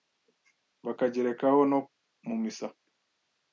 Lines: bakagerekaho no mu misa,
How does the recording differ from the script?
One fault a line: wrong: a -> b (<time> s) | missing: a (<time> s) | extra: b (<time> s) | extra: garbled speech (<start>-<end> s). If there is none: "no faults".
no faults